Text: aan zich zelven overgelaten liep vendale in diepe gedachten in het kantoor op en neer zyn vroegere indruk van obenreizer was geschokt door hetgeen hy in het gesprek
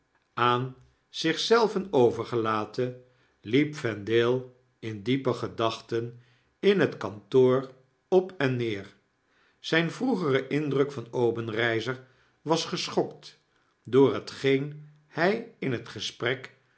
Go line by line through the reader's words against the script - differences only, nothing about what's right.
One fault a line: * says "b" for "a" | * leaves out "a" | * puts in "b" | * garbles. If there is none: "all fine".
all fine